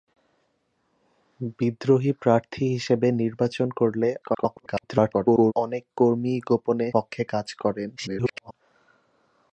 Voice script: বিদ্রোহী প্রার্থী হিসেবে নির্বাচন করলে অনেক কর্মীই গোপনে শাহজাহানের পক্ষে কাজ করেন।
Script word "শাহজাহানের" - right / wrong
wrong